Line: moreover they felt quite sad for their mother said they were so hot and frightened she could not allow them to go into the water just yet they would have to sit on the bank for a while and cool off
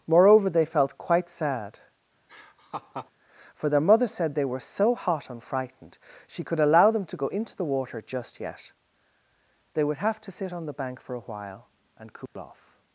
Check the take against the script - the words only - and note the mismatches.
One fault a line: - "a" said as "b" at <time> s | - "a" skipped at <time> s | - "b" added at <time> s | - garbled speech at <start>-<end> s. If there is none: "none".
- "not" skipped at 6.6 s